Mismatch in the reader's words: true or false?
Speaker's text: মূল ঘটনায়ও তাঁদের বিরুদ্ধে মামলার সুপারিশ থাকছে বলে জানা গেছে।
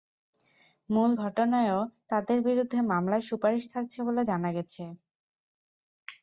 false